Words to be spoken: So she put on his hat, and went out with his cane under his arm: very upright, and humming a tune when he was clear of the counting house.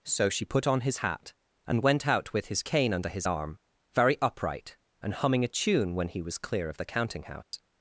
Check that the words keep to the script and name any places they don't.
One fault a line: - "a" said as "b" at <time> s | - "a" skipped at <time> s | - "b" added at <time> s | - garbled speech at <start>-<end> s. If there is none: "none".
none